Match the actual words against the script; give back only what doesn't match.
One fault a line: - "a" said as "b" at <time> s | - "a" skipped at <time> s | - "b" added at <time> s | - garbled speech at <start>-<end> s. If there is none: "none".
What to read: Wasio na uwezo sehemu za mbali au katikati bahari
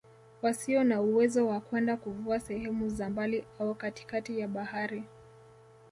- "wa kwenda kuvua" added at 1.5 s
- "ya" added at 4.4 s